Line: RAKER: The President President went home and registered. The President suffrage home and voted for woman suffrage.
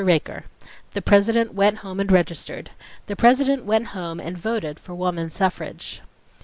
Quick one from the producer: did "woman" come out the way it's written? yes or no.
yes